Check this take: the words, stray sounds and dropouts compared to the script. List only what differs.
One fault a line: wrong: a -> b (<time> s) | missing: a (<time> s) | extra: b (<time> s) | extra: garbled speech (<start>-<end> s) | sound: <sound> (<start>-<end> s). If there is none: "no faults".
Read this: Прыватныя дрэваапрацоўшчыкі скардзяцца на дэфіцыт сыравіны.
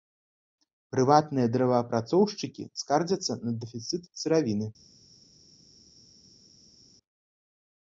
no faults